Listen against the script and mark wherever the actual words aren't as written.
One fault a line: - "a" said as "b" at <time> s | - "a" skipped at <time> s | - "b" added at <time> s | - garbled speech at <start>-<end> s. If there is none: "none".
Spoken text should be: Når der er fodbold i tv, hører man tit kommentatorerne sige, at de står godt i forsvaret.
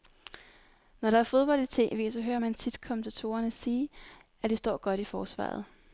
- "så" added at 2.1 s